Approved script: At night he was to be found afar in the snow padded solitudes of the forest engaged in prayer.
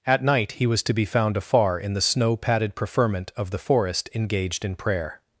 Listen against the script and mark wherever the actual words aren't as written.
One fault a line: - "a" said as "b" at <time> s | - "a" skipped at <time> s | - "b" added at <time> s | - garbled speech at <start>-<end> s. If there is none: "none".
- "solitudes" said as "preferment" at 2.7 s